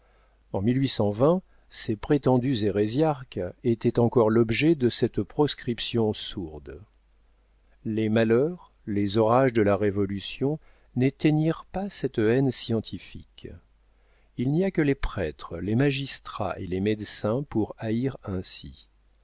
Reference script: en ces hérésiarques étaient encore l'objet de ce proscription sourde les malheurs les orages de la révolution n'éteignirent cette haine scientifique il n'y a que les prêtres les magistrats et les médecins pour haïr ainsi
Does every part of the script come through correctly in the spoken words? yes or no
no